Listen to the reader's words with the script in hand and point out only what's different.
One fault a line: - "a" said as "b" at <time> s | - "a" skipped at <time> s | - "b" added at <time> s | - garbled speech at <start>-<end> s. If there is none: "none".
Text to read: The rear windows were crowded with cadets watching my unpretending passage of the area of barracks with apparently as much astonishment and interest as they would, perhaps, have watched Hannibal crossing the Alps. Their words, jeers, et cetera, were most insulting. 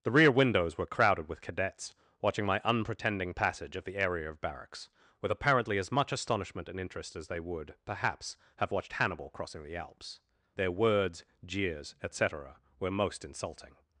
none